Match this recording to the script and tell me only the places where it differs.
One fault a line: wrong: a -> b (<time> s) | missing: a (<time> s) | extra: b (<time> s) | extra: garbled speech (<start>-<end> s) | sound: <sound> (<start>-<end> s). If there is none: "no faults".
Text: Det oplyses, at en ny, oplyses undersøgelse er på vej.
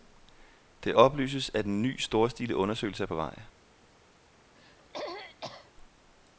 wrong: oplyses -> storstilet (2.0 s)
sound: throat clearing (4.5-5.7 s)